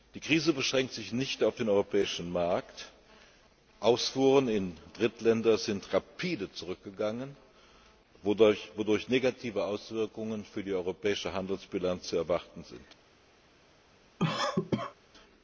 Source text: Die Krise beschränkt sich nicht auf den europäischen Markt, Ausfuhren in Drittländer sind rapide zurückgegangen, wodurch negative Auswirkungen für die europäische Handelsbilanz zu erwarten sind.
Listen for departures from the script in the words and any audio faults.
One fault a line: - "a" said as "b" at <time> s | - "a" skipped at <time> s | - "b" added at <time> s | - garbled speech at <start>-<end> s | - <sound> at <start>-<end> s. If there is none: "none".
- cough at 14.2-14.9 s